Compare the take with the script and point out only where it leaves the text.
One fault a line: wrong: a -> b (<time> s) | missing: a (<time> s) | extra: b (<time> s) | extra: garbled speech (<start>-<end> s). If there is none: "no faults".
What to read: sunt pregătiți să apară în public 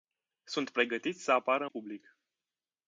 missing: în (1.6 s)